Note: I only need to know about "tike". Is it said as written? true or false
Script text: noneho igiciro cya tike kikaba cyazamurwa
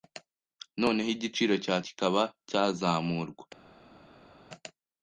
false